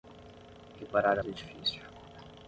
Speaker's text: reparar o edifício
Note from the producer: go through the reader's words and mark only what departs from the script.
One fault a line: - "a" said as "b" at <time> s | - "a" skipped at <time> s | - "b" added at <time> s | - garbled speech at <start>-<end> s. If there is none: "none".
none